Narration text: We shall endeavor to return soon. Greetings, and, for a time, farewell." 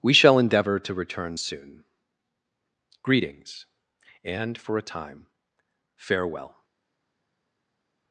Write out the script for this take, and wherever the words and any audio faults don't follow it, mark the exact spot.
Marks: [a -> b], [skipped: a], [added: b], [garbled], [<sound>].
We shall endeavor to return soon. Greetings, and, for a time, farewell."